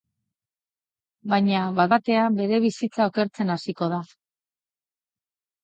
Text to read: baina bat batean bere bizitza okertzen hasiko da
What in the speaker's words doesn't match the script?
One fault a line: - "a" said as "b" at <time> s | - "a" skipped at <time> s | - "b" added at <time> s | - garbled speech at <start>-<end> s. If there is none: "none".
none